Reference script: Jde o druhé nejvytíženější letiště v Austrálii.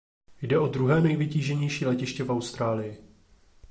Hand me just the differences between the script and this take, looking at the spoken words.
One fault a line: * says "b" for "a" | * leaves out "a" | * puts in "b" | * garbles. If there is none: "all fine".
all fine